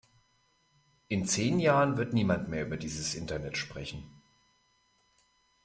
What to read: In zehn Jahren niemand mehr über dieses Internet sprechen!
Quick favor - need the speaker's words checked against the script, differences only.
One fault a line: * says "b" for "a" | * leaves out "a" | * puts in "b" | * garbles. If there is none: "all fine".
* puts in "wird"